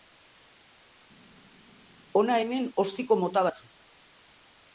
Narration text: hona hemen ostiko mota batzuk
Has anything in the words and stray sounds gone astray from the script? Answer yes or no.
no